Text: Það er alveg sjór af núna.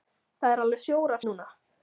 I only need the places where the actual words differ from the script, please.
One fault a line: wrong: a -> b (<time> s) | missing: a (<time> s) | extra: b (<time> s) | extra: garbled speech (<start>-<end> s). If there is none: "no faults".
no faults